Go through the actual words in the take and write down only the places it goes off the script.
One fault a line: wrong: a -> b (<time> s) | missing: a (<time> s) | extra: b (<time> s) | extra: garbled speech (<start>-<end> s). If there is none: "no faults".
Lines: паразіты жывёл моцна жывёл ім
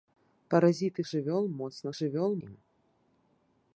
no faults